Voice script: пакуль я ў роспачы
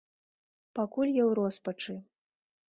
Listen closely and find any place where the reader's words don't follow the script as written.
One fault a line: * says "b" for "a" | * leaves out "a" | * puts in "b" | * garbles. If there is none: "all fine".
all fine